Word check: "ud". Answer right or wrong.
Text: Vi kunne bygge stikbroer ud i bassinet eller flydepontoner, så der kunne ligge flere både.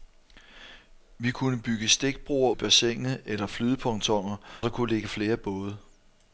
wrong